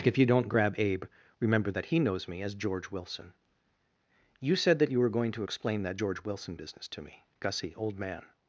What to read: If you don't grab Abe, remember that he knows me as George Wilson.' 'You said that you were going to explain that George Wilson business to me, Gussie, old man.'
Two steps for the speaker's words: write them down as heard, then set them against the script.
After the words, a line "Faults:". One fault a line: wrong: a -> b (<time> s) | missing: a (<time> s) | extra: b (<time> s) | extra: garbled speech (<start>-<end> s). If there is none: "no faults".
If you don't grab Abe, remember that he knows me as George Wilson.' 'You said that you were going to explain that George Wilson business to me, Gussie, old man.'
Faults:
no faults